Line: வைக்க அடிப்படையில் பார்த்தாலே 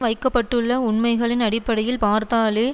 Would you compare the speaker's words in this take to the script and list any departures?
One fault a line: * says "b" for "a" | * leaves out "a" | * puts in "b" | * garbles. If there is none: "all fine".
* puts in "பட்டுள்ள உண்மைகளின்"